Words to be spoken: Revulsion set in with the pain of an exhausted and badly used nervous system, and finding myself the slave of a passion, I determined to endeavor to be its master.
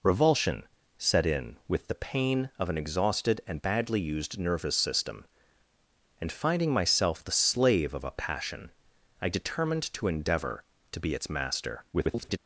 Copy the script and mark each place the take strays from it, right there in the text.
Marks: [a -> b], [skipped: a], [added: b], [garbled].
Revulsion set in with the pain of an exhausted and badly used nervous system, and finding myself the slave of a passion, I determined to endeavor to be its master. [garbled]